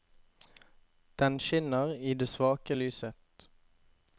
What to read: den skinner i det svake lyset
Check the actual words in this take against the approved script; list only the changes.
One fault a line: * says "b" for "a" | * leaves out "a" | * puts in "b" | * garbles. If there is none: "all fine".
all fine